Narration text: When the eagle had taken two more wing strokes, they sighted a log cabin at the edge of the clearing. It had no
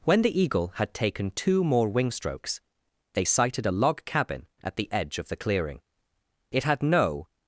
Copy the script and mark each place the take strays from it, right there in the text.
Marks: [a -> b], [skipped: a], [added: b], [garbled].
When the eagle had taken two more wing strokes, they sighted a log cabin at the edge of the clearing. It had no